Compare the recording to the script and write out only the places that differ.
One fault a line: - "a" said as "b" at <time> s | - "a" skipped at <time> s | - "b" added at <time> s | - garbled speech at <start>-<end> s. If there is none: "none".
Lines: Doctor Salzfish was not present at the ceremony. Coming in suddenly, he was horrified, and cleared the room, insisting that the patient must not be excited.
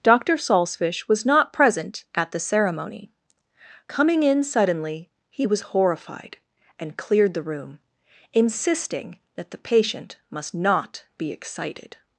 none